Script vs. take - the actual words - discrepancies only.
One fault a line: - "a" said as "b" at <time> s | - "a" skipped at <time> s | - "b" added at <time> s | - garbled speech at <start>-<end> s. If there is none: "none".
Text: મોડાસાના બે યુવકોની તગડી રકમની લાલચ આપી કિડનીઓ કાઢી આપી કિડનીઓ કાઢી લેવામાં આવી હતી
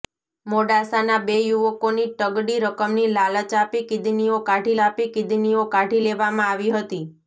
none